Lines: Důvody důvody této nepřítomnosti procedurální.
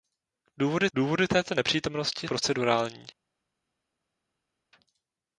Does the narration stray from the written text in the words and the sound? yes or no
no